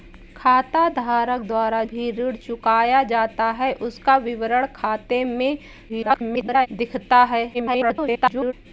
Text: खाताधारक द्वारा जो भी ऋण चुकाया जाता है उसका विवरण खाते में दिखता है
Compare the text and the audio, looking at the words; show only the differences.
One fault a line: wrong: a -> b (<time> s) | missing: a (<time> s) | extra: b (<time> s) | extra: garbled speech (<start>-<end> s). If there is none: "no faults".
missing: जो (1.8 s)
extra: garbled speech (5.9-6.7 s)
extra: garbled speech (7.5-8.5 s)